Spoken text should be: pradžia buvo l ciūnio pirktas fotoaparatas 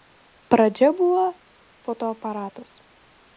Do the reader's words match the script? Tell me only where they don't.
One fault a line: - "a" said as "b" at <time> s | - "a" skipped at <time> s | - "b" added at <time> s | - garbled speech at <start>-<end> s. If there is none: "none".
- "l ciūnio pirktas" skipped at 1.2 s